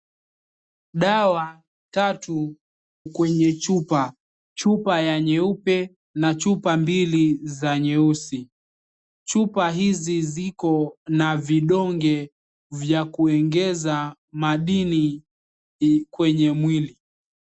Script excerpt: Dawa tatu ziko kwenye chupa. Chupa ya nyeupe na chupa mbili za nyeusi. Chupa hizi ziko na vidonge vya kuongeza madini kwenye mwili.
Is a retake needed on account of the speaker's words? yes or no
yes